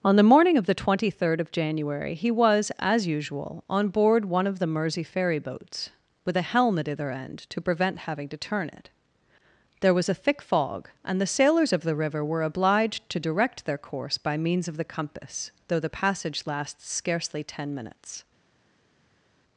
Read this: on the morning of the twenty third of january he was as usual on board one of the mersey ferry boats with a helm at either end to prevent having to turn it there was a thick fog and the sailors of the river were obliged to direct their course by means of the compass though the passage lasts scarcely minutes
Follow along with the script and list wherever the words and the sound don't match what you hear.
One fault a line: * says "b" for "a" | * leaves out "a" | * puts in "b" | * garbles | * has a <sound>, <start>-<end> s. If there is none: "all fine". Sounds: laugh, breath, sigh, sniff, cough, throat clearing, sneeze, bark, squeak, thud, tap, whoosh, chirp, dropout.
* puts in "ten"